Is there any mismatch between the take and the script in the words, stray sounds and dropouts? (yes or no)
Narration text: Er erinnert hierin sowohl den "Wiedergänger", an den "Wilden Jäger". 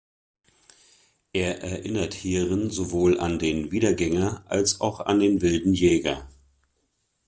yes